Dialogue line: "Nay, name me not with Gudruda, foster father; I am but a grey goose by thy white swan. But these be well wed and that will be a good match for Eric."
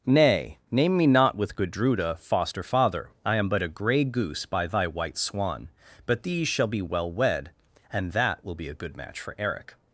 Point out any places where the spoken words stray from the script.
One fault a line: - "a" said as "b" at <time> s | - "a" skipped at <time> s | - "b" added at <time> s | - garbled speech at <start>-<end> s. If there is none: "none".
- "shall" added at 6.5 s